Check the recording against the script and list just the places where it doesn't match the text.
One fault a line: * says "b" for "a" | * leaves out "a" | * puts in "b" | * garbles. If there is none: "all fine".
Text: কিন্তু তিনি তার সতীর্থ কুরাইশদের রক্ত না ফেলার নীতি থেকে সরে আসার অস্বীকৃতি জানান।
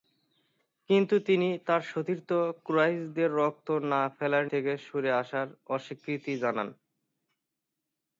* leaves out "নীতি"